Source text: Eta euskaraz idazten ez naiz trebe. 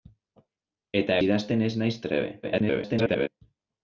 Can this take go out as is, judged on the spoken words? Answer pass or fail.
fail